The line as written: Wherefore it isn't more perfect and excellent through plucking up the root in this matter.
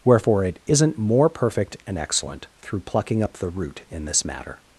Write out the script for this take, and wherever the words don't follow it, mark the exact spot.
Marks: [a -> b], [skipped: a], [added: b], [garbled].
Wherefore it isn't more perfect and excellent through plucking up the root in this matter.